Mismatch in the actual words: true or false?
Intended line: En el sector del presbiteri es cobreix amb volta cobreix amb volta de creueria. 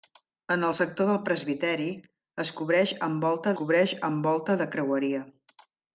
false